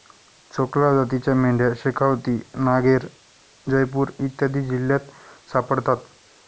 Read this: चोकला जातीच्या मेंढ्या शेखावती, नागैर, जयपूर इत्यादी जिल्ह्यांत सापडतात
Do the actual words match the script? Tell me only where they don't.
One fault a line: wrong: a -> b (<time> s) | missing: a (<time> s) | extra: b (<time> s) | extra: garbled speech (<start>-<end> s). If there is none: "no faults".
no faults